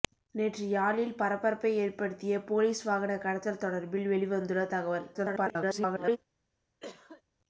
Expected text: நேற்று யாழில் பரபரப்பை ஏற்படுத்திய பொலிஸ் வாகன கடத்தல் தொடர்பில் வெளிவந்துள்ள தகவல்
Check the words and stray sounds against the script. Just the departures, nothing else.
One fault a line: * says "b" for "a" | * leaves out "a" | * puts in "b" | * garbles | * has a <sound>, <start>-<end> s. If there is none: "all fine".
* garbles
* has a cough, 6.8-7.2 s